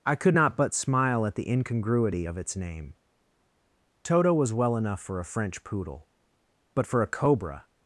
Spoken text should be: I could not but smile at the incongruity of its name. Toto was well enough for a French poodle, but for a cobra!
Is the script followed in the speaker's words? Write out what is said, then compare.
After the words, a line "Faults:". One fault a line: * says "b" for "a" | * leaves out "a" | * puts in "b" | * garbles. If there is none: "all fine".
I could not but smile at the incongruity of its name. Toto was well enough for a French poodle, but for a cobra!
Faults:
all fine